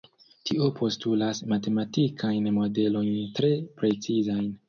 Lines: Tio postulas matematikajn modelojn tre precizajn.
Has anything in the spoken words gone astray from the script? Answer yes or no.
no